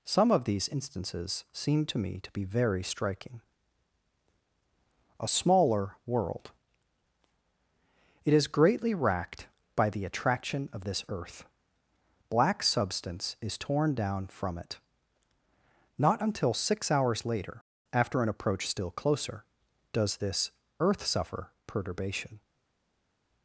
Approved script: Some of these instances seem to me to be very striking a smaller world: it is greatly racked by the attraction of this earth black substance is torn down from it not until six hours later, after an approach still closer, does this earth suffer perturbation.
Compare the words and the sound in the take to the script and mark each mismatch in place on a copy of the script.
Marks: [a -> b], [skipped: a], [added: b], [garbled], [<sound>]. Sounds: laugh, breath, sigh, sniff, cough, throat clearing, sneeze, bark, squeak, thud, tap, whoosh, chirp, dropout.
Some of these instances seem to me to be very striking a smaller world: it is greatly racked by the attraction of this earth black substance is torn down from it not until six hours later, after an approach still closer, does this earth suffer perturbation.